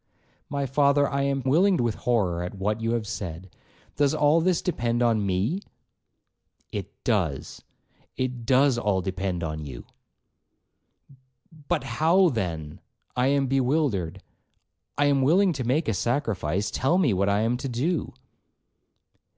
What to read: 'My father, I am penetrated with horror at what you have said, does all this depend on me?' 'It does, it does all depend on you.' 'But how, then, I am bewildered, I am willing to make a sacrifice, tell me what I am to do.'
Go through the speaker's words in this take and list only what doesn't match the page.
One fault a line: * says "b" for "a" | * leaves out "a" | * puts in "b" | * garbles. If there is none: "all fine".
* says "willing" for "penetrated"